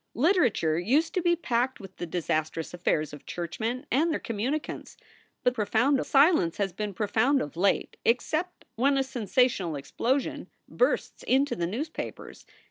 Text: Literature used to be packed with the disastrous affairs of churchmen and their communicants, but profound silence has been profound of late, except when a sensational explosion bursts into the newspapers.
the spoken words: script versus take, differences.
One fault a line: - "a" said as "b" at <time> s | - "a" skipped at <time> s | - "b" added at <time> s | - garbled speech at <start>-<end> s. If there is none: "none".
none